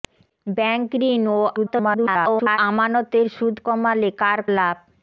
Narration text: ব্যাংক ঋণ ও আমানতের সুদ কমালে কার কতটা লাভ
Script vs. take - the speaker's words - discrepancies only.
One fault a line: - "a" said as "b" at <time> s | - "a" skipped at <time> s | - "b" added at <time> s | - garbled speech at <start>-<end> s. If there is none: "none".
- garbled speech at 1.6-2.6 s
- "কতটা" skipped at 4.4 s